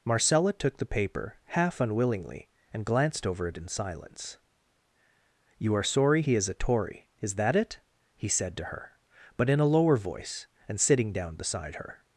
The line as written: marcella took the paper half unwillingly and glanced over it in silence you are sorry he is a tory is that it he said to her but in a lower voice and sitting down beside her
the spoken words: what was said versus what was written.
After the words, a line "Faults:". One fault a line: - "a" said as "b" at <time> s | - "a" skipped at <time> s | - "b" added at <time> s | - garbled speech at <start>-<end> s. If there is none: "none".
marcella took the paper half unwillingly and glanced over it in silence you are sorry he is a tory is that it he said to her but in a lower voice and sitting down beside her
Faults:
none